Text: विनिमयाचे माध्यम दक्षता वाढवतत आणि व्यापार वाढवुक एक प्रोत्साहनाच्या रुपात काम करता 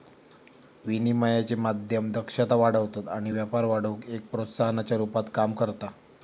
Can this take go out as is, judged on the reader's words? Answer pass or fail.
pass